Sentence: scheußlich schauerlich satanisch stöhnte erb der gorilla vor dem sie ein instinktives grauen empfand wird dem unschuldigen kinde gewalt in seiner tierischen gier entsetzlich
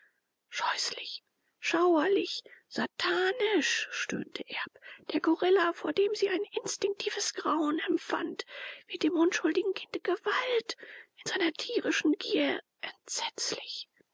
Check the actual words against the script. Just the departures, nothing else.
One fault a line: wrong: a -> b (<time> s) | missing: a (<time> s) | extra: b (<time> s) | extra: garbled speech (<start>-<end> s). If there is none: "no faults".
no faults